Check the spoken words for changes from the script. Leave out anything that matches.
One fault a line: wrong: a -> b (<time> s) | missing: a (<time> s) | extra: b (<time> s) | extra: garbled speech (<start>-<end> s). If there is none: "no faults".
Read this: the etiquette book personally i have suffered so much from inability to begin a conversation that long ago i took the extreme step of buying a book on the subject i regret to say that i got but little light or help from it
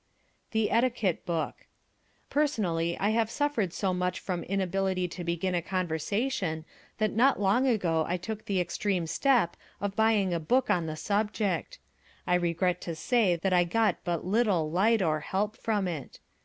extra: not (7.1 s)